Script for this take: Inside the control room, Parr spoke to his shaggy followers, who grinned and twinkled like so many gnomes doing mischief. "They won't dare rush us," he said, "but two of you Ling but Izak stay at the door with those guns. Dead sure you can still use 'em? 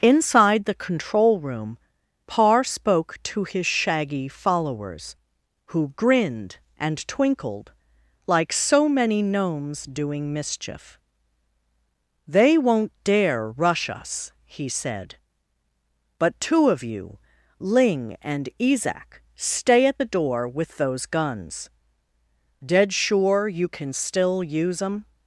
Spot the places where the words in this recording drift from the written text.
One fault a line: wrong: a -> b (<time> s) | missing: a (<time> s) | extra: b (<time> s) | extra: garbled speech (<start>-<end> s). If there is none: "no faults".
wrong: but -> and (18.2 s)